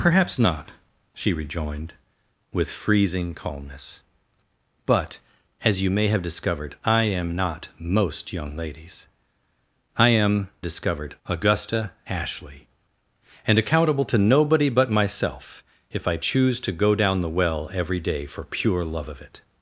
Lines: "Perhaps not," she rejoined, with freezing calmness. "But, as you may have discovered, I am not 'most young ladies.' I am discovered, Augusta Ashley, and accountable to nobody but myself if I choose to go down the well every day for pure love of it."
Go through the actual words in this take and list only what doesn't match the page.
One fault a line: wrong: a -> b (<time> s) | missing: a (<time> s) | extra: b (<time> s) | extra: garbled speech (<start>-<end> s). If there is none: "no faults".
no faults